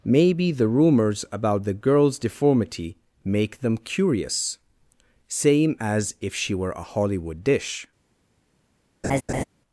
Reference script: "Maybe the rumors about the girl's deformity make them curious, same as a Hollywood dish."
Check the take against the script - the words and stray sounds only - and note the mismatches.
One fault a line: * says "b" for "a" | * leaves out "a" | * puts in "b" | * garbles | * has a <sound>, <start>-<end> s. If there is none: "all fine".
* puts in "if she were"
* has a laugh, 9.0-9.4 s